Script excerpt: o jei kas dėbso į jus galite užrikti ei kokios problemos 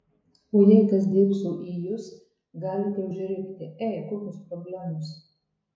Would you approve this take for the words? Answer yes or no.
yes